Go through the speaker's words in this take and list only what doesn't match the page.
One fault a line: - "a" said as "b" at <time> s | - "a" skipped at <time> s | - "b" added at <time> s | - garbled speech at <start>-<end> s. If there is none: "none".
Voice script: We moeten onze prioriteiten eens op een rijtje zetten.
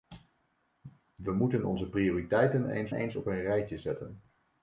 - "eens" added at 2.9 s